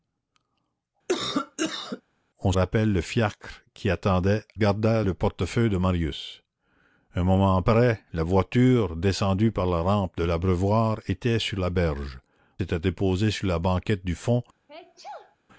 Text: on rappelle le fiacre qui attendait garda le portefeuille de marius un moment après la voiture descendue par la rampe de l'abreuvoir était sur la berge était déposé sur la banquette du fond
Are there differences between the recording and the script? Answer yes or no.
no